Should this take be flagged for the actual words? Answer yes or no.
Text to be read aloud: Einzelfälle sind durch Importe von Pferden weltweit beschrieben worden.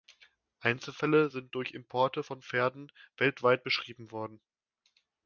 no